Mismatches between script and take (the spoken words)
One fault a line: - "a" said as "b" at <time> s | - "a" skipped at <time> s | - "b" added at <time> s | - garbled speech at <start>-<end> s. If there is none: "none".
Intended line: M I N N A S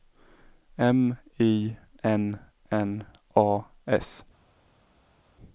none